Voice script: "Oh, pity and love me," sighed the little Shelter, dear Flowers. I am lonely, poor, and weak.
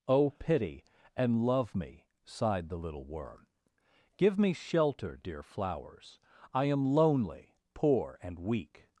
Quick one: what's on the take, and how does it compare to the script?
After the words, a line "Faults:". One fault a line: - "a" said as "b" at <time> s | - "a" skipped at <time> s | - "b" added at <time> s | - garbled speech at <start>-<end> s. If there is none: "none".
"Oh, pity and love me," sighed the little Worm. ''Give me shelter, dear Flowers. I am lonely, poor, and weak.
Faults:
- "Worm Give me" added at 3.0 s